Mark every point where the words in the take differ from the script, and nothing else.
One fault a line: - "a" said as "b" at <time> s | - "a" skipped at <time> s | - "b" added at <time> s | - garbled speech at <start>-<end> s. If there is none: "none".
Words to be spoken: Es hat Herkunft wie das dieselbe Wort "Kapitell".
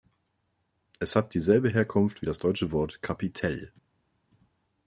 - "dieselbe" added at 1.4 s
- "dieselbe" said as "deutsche" at 2.4 s